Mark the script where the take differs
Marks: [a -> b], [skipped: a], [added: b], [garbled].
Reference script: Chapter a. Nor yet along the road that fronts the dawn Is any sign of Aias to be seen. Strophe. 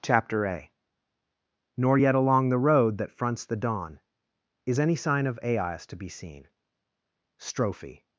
Chapter a. Nor yet along the road that fronts the dawn Is any sign of Aias to be seen. Strophe.